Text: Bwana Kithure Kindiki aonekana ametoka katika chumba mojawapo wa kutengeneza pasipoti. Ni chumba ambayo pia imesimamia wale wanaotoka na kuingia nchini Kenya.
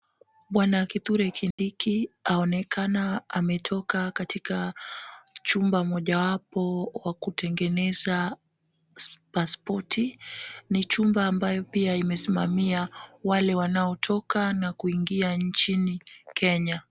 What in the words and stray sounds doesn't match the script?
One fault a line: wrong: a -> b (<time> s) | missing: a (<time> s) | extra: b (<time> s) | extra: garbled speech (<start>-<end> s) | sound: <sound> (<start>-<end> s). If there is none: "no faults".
sound: dropout (1.5-1.6 s)